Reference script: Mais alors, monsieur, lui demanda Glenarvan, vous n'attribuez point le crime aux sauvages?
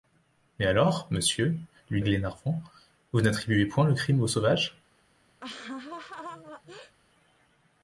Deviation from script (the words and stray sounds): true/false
true